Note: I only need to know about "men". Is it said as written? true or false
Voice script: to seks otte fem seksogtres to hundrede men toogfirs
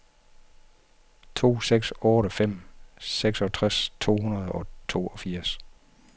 false